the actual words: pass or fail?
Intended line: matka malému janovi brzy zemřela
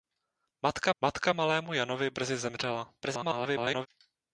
fail